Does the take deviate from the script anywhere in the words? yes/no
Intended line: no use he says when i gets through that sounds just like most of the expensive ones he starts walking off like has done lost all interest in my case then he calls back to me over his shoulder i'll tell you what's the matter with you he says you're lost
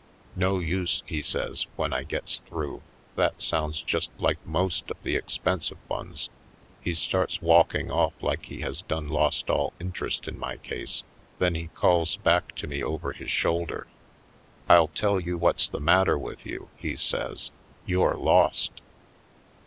yes